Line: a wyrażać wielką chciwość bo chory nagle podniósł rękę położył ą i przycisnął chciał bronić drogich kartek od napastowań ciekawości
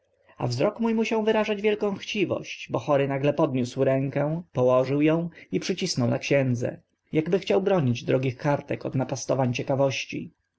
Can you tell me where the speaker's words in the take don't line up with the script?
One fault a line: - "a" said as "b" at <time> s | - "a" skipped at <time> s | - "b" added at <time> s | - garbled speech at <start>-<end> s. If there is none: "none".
- "wzrok mó musiał" added at 0.5 s
- "na księdze akby" added at 6.1 s